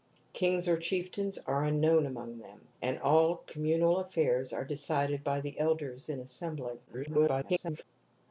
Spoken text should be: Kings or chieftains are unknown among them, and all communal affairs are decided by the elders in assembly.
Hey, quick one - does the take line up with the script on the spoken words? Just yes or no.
no